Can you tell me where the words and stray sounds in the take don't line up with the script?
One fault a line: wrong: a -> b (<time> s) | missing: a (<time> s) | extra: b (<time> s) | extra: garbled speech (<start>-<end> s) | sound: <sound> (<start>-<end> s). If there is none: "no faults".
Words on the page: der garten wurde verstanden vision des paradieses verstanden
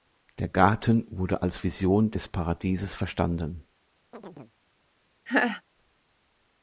wrong: verstanden -> als (1.4 s)
sound: chirp (4.1-4.5 s)
sound: laugh (5.3-5.6 s)